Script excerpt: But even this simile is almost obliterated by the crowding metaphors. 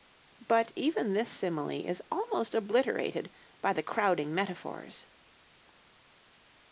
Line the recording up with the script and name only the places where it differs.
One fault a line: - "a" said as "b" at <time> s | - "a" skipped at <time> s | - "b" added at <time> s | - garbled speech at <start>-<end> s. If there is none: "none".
none